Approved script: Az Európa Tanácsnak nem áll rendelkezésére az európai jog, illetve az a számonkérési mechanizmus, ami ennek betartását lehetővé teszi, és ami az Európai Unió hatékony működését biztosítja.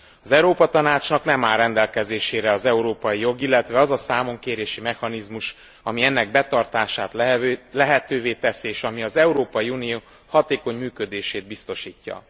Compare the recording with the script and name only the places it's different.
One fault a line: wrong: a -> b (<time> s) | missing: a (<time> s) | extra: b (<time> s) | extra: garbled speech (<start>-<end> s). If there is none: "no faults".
no faults